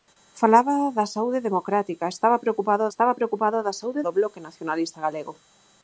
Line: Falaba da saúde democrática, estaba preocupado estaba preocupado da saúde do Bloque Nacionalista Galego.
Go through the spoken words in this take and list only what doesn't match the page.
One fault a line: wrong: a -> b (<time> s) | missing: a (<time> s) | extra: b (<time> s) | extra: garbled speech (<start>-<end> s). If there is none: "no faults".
no faults